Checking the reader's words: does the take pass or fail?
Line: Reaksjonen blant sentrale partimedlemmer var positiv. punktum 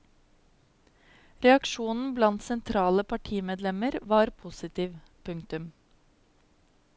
pass